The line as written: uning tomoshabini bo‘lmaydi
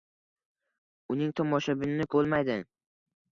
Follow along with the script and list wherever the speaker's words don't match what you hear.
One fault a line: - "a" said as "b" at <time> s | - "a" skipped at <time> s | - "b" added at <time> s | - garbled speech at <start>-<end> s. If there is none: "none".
none